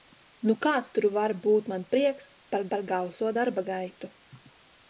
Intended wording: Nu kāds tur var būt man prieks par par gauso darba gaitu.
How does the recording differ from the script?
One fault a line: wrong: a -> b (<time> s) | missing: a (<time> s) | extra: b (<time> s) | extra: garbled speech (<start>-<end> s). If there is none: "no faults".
no faults